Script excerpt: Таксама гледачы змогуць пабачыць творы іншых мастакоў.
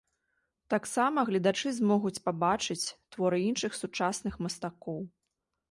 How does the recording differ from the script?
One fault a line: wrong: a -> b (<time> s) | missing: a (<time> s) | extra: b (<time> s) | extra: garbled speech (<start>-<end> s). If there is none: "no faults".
extra: сучасных (3.8 s)